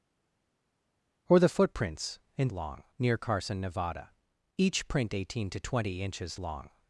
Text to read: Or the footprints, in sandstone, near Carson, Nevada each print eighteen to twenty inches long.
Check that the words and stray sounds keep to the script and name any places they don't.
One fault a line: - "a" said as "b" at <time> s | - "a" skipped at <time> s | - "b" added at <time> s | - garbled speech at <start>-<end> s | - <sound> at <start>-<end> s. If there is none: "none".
- "sandstone" said as "long" at 2.5 s